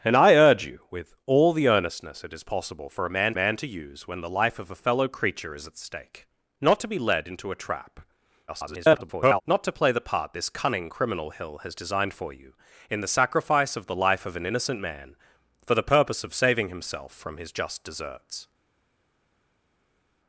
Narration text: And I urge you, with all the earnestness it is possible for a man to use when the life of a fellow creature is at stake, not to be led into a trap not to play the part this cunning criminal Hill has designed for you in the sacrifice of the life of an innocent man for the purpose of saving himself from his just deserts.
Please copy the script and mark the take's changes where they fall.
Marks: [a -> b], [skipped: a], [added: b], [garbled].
And I urge you, with all the earnestness it is possible for a man [added: man] to use when the life of a fellow creature is at stake, not to be led into a trap [garbled] not to play the part this cunning criminal Hill has designed for you in the sacrifice of the life of an innocent man for the purpose of saving himself from his just deserts.